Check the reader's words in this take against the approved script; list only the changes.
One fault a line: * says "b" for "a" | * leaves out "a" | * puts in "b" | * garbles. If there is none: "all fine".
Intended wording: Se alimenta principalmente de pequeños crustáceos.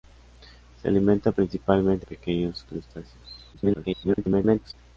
* leaves out "de"
* garbles